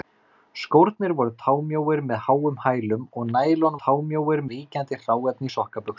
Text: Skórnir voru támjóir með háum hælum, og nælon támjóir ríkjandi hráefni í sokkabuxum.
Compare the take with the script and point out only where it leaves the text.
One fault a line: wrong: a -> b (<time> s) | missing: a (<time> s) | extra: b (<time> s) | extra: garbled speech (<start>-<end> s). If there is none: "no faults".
no faults